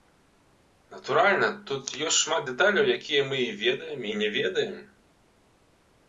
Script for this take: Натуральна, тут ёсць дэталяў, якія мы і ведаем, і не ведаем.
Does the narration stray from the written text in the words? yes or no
yes